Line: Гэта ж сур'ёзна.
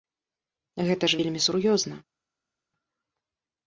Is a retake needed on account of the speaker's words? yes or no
yes